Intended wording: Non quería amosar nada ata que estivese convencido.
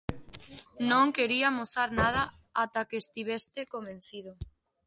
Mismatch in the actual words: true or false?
false